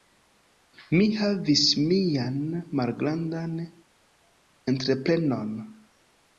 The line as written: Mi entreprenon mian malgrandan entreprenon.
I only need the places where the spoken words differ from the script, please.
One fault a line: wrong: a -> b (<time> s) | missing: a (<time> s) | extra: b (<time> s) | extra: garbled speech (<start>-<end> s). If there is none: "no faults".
wrong: entreprenon -> havis (1.2 s)